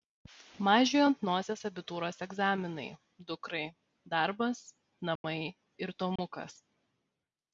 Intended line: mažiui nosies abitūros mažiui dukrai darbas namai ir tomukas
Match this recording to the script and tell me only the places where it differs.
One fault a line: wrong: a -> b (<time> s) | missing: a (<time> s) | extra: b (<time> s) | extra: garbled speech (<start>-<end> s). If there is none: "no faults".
extra: ant (1.1 s)
wrong: mažiui -> egzaminai (2.3 s)